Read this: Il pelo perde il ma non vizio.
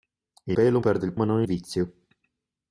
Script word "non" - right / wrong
right